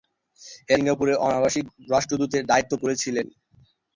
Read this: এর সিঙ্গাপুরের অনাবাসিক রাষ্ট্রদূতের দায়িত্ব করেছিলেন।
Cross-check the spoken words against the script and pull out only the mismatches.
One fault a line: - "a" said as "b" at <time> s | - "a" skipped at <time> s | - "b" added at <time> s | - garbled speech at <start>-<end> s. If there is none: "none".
none